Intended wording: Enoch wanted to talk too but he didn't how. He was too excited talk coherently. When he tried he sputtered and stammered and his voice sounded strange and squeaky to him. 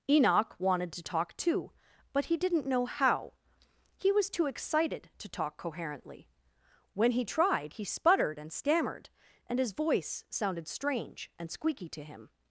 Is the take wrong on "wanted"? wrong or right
right